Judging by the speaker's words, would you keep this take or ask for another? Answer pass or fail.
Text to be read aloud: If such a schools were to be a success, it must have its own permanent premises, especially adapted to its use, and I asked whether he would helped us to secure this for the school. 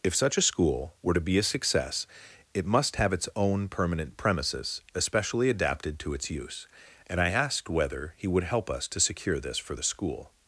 fail